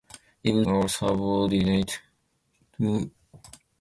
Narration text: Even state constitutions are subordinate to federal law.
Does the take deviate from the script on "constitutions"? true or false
true